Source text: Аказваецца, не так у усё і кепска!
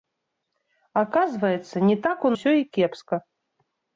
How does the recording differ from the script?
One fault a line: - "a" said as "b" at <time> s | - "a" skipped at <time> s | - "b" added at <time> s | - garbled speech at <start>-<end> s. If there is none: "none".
none